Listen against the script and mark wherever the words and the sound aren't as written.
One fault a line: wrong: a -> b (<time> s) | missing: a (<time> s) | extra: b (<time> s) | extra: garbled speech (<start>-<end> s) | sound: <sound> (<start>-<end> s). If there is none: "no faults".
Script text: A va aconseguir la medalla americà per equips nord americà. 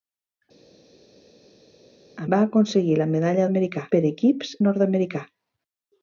no faults